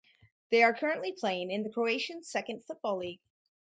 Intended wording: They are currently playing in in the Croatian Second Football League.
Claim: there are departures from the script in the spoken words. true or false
true